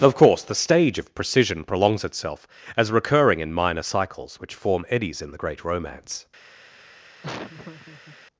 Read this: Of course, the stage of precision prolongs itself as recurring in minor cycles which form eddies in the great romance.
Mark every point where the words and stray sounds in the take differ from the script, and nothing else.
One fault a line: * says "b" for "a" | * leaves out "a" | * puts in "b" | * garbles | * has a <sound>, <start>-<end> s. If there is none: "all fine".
* has a laugh, 7.2-8.2 s